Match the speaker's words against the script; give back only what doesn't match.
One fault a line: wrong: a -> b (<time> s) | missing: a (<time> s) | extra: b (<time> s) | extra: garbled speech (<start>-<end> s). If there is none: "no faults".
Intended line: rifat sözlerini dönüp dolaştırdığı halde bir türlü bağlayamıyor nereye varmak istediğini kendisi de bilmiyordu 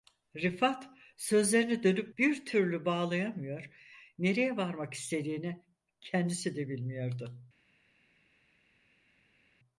missing: dolaştırdığı halde (2.1 s)